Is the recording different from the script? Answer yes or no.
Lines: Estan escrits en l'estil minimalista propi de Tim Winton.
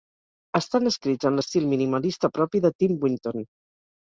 no